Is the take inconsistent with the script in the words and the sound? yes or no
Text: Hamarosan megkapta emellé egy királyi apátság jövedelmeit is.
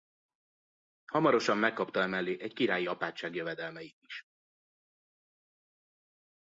no